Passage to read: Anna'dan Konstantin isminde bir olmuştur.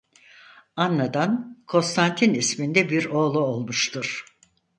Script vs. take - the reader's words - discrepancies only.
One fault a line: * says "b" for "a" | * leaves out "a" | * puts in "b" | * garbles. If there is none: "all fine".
* puts in "oğlu"